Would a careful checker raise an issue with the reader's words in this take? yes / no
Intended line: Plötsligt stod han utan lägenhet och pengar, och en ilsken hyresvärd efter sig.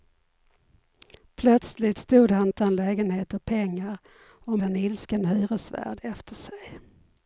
no